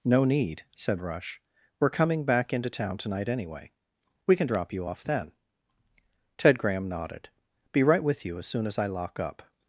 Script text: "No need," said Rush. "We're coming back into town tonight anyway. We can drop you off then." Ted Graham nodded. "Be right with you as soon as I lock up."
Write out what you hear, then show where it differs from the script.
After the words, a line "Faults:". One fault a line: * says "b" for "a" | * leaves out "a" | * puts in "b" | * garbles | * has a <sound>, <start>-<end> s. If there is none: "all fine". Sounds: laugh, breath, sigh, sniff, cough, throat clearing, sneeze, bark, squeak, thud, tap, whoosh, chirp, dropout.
"No need," said Rush. "We're coming back into town tonight anyway. We can drop you off then." Ted Graham nodded. "Be right with you as soon as I lock up."
Faults:
all fine